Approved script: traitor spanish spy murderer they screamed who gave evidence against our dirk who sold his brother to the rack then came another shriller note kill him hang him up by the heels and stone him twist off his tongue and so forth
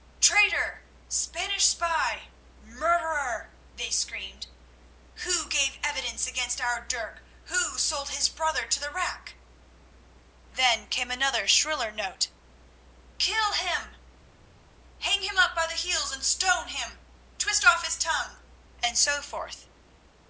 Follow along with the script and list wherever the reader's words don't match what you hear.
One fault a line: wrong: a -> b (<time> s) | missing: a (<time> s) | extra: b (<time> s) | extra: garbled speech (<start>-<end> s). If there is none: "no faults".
no faults